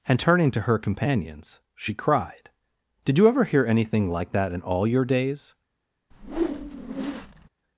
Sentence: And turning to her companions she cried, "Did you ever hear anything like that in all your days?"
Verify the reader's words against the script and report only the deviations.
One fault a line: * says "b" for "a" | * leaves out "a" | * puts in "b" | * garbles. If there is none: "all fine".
all fine